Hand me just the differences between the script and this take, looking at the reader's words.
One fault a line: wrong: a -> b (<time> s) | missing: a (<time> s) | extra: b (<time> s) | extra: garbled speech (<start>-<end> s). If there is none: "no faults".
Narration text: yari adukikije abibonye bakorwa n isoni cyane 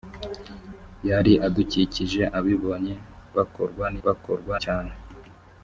wrong: isoni -> bakorwa (4.0 s)